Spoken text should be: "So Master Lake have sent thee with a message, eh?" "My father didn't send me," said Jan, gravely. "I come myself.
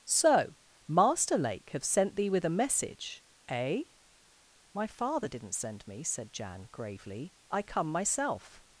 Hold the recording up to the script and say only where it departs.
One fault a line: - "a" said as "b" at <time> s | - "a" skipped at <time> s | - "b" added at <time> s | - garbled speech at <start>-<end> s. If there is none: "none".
none